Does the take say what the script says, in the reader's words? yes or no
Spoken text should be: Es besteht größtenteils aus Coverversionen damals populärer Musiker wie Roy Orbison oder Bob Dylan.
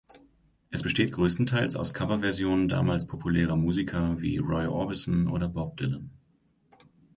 yes